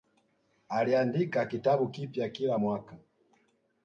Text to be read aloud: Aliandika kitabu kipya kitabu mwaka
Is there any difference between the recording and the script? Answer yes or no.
yes